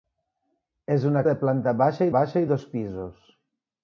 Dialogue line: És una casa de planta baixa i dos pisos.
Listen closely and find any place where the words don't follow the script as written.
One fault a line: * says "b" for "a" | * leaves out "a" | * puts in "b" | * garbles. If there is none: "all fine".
* leaves out "casa"
* puts in "baixa"